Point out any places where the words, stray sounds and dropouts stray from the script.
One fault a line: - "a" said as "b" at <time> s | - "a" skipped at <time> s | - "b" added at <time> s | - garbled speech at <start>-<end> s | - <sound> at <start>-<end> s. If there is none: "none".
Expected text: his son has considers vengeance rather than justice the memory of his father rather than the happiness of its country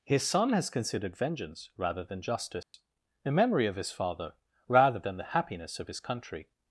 - "considers" said as "considered" at 0.7 s
- dropout at 2.6-2.7 s
- "its" said as "his" at 5.9 s